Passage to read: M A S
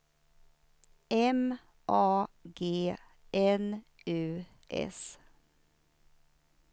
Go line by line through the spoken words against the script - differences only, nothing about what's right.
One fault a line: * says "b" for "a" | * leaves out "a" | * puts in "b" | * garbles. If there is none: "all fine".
* puts in "G N U"